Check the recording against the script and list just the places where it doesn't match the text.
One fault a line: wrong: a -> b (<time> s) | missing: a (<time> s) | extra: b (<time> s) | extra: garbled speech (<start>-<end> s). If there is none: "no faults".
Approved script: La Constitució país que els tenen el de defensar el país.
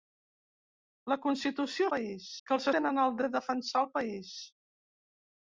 no faults